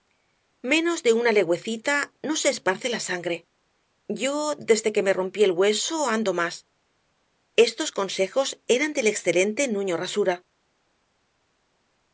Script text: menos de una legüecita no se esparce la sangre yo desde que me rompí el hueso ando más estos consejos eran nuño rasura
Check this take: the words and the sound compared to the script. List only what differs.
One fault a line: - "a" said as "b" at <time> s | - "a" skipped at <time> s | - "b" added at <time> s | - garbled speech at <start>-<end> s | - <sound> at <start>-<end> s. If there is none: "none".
- "del excelente" added at 8.9 s